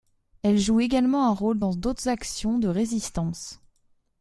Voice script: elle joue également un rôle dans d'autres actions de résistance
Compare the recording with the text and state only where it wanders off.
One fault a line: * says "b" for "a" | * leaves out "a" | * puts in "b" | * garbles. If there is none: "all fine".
all fine